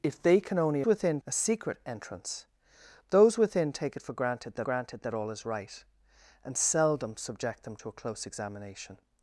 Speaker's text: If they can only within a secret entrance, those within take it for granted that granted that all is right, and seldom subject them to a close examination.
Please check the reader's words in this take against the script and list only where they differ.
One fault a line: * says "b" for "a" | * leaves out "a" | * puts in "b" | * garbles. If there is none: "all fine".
all fine